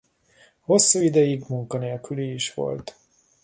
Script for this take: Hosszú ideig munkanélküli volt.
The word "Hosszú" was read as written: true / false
true